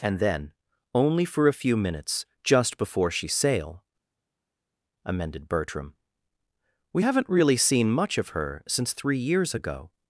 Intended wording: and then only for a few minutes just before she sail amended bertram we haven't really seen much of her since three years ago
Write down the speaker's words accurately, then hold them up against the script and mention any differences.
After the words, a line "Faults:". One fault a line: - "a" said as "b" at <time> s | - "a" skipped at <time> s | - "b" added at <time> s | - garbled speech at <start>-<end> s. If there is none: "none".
and then only for a few minutes just before she sail amended bertram we haven't really seen much of her since three years ago
Faults:
none